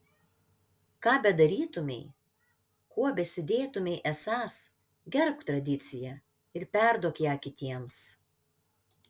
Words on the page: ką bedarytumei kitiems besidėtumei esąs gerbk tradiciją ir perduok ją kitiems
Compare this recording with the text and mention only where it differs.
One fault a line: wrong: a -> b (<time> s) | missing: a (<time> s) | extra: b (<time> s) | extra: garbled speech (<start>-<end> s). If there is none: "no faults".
wrong: kitiems -> kuo (3.0 s)